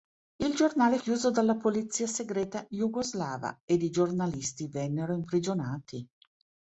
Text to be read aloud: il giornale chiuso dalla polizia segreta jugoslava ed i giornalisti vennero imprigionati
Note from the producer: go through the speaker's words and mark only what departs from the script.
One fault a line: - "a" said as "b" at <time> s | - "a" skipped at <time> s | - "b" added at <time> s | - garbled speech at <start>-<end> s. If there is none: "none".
none